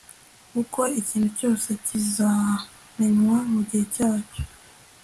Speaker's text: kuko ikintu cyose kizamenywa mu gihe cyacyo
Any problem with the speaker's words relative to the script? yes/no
no